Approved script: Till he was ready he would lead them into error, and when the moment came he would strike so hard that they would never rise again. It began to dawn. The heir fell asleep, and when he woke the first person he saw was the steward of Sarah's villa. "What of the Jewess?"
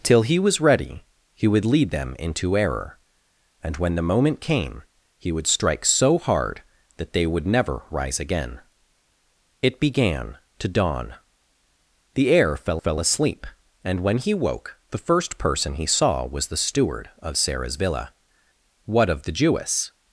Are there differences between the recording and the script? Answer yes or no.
yes